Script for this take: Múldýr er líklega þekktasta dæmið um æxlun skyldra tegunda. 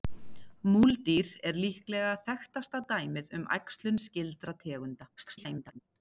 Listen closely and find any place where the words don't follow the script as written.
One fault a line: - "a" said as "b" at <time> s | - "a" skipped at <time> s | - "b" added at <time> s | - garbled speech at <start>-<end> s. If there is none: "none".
- garbled speech at 5.2-5.8 s